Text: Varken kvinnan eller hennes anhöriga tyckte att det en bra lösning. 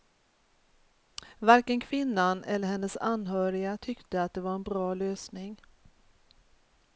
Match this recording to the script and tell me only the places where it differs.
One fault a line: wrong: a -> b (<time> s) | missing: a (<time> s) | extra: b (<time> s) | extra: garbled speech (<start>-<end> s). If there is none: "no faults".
extra: var (4.4 s)